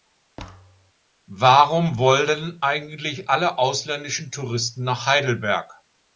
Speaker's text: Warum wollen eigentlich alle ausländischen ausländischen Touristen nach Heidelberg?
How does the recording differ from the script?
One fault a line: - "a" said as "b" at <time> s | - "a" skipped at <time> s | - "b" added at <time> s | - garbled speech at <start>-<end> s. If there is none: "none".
- "ausländischen" skipped at 4.3 s